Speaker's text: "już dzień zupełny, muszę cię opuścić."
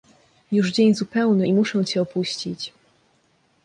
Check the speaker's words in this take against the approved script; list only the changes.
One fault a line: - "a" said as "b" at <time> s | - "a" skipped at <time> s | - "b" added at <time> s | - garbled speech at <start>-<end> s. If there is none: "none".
- "i" added at 1.4 s